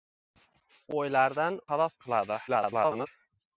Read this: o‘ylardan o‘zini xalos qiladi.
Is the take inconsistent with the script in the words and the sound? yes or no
yes